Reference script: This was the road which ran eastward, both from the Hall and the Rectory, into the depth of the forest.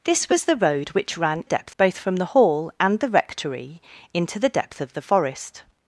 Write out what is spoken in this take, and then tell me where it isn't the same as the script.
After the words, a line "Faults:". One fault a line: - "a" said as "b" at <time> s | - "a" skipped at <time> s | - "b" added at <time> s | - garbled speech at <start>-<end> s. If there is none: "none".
This was the road which ran depth, both from the Hall and the Rectory, into the depth of the forest.
Faults:
- "eastward" said as "depth" at 1.4 s